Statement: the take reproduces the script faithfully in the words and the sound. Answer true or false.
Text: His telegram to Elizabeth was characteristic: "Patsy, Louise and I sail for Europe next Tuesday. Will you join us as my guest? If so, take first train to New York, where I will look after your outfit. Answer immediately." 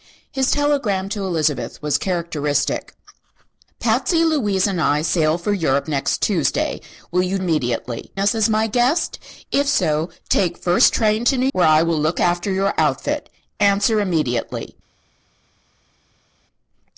false